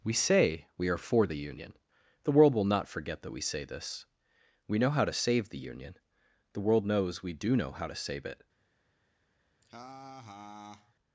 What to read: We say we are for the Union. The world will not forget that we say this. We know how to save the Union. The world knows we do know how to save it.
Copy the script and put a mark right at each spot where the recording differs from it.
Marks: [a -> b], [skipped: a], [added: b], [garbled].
We say we are for the Union. The world will not forget that we say this. We know how to save the Union. The world knows we do know how to save it.